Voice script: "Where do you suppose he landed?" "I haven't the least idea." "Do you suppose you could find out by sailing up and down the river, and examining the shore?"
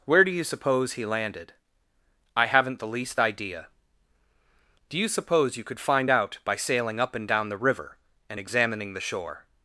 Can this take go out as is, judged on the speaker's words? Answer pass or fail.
pass